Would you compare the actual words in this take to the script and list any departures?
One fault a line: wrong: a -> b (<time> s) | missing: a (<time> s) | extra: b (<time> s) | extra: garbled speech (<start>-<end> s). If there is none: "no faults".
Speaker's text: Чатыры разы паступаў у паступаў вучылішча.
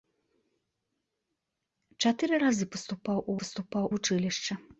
no faults